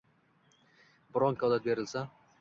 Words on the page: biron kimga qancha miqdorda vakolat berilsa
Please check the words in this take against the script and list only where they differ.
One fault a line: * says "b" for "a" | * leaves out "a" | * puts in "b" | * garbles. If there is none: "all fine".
* leaves out "kimga qancha miqdorda"